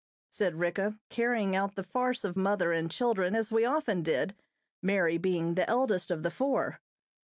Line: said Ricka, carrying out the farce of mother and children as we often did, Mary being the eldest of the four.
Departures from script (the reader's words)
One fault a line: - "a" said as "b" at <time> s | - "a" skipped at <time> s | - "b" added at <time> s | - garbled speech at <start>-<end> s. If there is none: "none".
none